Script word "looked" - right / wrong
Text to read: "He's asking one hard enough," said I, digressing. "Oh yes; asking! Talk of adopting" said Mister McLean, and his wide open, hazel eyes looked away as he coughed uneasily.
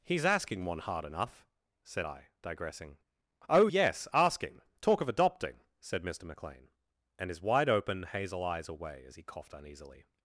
wrong